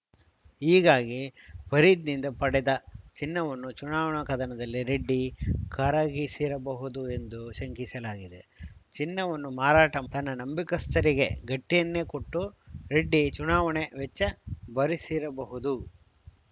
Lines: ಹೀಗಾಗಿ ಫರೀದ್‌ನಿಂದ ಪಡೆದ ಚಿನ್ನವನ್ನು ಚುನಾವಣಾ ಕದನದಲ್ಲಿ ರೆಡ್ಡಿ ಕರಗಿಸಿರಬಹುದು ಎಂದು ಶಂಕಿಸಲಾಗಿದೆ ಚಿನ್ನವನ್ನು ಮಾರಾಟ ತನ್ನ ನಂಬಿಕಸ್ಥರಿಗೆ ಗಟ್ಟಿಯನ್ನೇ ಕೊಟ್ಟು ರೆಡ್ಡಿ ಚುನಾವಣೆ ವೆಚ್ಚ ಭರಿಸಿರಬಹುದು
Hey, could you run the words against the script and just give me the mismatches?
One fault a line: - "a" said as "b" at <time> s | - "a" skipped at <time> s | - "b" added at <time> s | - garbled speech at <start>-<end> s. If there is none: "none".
none